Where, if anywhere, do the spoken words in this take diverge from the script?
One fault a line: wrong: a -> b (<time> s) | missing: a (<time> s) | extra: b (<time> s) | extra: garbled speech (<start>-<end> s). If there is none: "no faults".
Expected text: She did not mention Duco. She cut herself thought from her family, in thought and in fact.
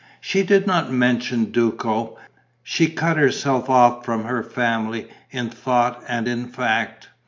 wrong: thought -> off (3.7 s)